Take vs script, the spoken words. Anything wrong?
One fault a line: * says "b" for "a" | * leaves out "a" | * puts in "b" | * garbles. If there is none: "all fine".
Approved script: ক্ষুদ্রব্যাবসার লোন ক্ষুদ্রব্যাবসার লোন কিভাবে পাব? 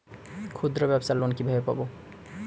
* leaves out "ক্ষুদ্রব্যাবসার লোন"